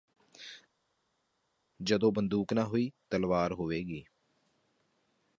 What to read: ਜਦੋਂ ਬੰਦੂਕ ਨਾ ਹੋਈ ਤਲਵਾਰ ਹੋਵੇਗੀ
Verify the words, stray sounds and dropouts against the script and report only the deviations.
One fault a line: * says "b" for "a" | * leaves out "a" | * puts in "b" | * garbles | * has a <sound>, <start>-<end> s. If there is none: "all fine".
all fine